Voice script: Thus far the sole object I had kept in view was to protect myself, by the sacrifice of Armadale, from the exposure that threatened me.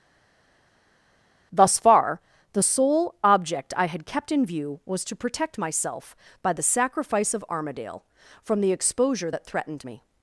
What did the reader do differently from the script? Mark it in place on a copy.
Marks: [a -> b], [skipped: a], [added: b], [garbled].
Thus far the sole object I had kept in view was to protect myself, by the sacrifice of Armadale, from the exposure that threatened me.